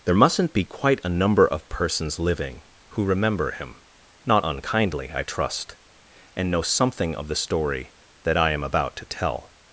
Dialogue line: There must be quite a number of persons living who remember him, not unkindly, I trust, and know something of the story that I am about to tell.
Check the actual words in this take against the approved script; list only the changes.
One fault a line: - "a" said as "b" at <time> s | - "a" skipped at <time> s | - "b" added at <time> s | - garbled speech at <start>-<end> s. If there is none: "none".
- "must" said as "mustn't" at 0.1 s